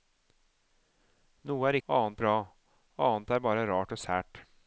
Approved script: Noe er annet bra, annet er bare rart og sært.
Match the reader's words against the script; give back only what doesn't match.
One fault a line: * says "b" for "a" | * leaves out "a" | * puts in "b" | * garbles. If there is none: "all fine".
all fine